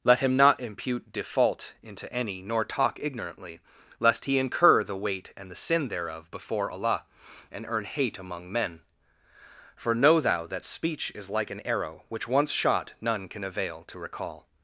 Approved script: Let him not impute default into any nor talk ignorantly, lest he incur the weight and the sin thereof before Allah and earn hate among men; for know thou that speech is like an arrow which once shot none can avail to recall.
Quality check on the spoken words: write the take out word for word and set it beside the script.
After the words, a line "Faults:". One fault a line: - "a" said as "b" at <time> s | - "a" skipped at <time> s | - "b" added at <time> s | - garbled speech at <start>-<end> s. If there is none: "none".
Let him not impute default into any nor talk ignorantly, lest he incur the weight and the sin thereof before Allah and earn hate among men; for know thou that speech is like an arrow which once shot none can avail to recall.
Faults:
none